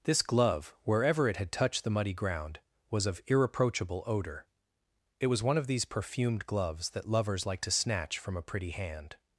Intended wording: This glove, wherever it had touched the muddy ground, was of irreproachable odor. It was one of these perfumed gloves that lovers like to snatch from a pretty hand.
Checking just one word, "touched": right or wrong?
right